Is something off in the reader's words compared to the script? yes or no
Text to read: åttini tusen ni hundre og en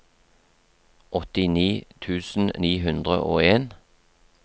no